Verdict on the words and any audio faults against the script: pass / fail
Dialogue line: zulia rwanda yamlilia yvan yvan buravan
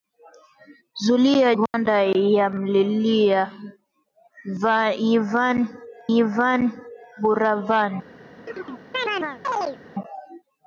fail